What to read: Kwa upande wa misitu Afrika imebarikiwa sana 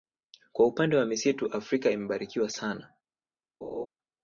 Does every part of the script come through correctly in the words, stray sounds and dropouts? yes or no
no